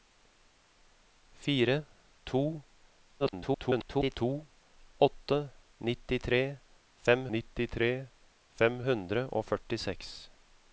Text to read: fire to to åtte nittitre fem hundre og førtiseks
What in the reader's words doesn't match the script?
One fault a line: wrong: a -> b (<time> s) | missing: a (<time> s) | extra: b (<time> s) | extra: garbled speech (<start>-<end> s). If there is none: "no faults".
extra: garbled speech (3.2-4.2 s)
extra: nittitre fem (7.4 s)